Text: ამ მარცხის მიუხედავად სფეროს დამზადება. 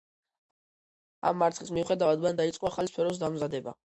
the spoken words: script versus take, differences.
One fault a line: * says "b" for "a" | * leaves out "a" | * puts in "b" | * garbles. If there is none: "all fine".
* puts in "მან დაიწყო ახალი"